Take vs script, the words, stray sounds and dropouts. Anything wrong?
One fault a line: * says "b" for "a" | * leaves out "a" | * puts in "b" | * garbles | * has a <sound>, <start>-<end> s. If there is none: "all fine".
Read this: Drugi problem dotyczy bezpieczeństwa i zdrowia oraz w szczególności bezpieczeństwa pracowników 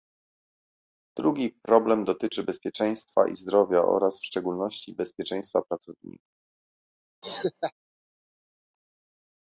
* has a laugh, 7.2-7.7 s